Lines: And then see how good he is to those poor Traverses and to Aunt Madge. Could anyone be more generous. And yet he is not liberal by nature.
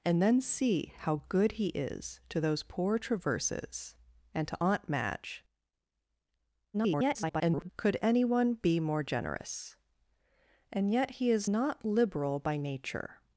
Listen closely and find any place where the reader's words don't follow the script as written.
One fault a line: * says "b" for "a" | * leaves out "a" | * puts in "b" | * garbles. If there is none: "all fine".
* garbles